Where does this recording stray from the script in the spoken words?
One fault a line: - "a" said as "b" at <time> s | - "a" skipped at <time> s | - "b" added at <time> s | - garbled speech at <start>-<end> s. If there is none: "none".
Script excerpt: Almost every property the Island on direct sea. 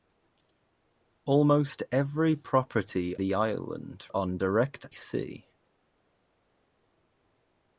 none